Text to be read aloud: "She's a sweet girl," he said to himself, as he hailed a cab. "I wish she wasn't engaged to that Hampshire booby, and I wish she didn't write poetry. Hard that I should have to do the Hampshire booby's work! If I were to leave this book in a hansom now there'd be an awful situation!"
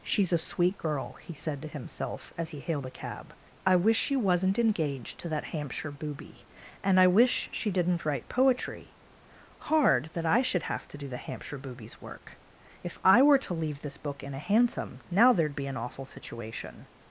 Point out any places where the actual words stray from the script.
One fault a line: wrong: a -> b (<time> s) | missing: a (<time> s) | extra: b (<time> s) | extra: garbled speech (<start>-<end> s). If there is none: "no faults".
no faults